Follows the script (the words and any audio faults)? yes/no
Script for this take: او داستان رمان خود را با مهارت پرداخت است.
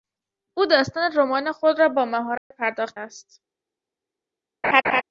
no